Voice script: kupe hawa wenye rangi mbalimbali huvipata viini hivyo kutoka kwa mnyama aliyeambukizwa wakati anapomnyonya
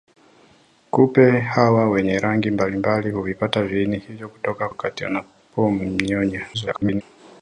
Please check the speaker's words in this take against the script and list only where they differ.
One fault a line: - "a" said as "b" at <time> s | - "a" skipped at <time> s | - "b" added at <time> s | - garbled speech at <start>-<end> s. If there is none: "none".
- "kwa mnyama aliyeambukizwa" skipped at 4.7 s
- garbled speech at 6.5-7.0 s